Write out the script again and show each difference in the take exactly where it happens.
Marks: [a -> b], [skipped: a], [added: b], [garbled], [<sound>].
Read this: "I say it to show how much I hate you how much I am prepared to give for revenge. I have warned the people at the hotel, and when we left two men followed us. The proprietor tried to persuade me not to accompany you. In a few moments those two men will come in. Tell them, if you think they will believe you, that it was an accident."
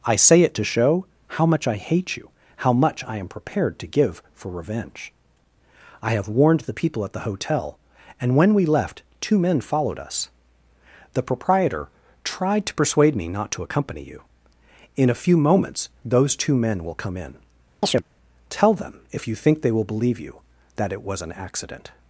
"I say it to show how much I hate you how much I am prepared to give for revenge. I have warned the people at the hotel, and when we left two men followed us. The proprietor tried to persuade me not to accompany you. In a few moments those two men will come in. [chirp] Tell them, if you think they will believe you, that it was an accident."